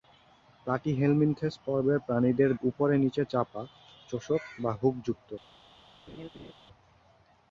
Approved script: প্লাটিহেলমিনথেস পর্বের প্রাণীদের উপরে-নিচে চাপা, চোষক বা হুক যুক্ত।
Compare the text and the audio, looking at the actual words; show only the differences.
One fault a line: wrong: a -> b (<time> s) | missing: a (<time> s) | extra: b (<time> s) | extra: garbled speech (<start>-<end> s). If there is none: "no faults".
no faults